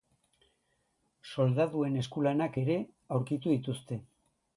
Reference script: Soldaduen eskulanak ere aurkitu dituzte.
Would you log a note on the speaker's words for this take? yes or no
no